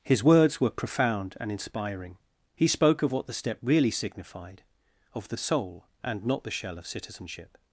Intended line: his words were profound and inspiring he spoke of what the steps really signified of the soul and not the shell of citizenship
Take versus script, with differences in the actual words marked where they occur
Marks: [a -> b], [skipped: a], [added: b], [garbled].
his words were profound and inspiring he spoke of what the [steps -> step] really signified of the soul and not the shell of citizenship